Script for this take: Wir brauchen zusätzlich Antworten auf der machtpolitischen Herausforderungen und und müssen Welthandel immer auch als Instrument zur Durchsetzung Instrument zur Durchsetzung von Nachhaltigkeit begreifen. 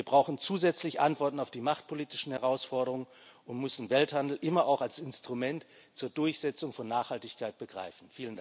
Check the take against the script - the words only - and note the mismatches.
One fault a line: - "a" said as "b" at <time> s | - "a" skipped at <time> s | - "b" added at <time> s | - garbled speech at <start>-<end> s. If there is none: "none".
- "der" said as "die" at 1.5 s
- "und" skipped at 3.6 s
- "Instrument zur Durchsetzung" skipped at 6.7 s